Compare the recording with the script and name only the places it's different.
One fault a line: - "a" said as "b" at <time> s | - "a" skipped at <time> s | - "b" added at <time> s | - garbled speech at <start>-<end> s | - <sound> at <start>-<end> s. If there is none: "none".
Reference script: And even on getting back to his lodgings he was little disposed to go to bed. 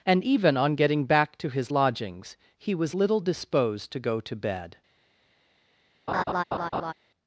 - laugh at 6.1-6.9 s